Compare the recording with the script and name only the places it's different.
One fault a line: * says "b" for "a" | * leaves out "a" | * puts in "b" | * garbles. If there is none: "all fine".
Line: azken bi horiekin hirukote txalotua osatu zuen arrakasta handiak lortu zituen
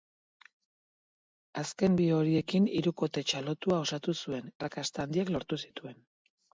all fine